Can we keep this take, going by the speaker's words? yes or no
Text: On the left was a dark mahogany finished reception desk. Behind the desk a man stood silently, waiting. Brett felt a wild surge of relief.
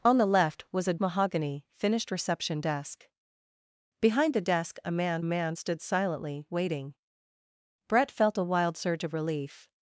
no